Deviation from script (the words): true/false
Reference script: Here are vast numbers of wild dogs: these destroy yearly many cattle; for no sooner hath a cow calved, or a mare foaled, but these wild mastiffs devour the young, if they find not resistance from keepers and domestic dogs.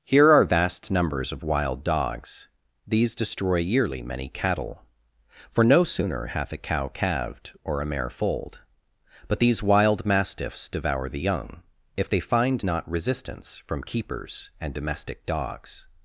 false